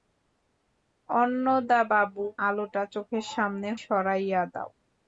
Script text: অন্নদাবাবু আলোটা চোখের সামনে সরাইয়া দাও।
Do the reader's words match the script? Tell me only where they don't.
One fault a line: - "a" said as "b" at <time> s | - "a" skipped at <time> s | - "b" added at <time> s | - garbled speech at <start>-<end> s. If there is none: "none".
none